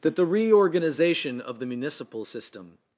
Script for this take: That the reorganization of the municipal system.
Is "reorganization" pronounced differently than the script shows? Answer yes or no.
no